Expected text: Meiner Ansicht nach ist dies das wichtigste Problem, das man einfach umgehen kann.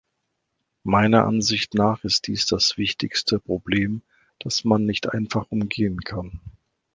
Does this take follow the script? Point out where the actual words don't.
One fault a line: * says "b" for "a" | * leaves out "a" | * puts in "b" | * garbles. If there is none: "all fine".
* puts in "nicht"